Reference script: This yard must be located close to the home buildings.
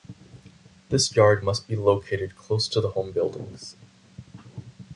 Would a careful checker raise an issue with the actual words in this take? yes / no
no